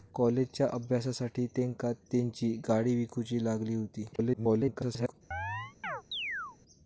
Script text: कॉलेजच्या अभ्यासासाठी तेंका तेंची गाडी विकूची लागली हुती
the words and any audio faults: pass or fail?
fail